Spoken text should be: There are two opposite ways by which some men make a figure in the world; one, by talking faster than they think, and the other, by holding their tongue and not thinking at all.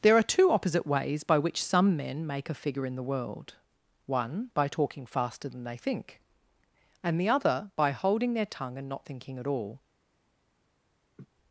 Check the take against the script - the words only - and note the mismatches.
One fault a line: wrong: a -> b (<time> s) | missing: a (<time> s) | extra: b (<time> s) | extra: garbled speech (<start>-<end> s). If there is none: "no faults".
no faults